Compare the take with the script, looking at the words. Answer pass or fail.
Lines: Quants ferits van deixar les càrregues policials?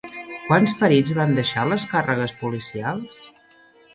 pass